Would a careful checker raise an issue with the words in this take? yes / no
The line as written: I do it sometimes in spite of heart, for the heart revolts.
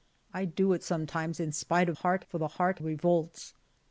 no